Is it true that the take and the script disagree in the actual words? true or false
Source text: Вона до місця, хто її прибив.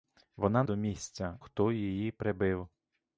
false